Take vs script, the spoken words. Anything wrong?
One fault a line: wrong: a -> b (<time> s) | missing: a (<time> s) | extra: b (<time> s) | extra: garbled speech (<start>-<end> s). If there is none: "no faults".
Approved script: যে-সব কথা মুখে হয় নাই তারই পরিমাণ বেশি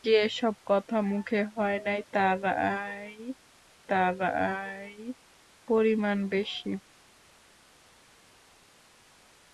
extra: তারই (3.9 s)